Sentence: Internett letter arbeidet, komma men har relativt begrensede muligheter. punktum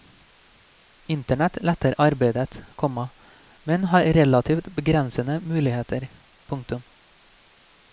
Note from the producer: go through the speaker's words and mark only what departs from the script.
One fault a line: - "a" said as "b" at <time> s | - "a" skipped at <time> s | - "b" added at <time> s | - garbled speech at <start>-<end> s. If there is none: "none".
none